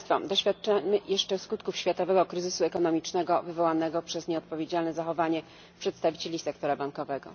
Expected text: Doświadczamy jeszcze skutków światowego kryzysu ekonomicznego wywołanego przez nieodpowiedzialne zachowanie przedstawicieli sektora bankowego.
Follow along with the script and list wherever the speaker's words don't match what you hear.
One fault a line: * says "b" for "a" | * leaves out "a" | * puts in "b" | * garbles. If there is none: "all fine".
all fine